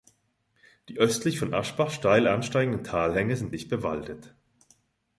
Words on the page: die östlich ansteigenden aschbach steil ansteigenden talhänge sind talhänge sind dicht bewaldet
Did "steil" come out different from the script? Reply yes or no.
no